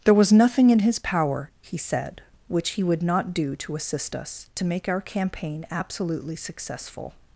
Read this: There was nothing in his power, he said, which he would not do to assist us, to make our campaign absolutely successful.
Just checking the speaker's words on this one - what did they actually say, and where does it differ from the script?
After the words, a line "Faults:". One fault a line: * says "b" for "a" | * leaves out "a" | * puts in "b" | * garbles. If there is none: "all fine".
There was nothing in his power, he said, which he would not do to assist us, to make our campaign absolutely successful.
Faults:
all fine